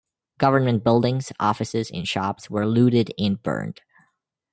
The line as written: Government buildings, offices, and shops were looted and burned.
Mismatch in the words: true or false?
false